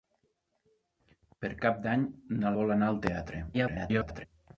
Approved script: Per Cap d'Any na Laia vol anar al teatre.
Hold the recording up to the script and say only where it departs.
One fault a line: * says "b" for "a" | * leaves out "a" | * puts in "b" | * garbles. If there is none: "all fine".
* leaves out "Laia"
* garbles